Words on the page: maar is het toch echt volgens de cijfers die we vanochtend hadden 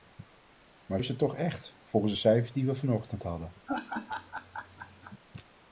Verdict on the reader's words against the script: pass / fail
pass